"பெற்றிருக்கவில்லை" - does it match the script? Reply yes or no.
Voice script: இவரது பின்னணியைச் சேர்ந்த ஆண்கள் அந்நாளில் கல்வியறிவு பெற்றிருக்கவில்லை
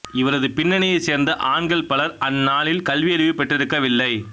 yes